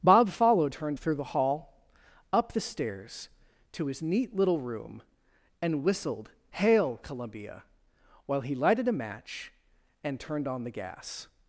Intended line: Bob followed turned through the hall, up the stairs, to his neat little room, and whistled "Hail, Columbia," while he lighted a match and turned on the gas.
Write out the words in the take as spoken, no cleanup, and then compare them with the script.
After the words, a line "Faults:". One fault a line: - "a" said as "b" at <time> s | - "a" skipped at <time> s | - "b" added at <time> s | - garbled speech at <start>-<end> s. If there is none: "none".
Bob followed turned through the hall, up the stairs, to his neat little room, and whistled "Hail, Columbia," while he lighted a match and turned on the gas.
Faults:
none